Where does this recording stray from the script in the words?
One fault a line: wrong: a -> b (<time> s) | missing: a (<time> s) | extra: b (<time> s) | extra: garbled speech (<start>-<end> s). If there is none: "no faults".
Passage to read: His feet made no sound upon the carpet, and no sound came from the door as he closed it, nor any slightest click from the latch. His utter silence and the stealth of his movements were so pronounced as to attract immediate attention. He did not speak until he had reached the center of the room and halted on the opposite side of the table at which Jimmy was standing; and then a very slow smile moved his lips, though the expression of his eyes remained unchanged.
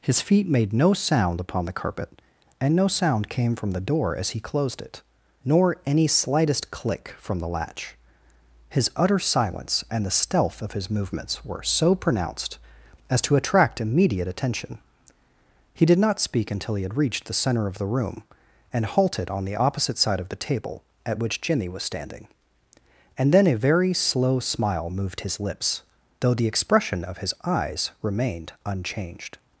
no faults